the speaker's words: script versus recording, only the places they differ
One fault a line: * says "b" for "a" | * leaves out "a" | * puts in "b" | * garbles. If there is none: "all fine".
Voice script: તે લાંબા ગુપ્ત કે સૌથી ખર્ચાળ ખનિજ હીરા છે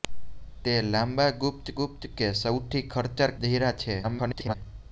* puts in "ગુપ્ત"
* leaves out "ખનિજ"
* garbles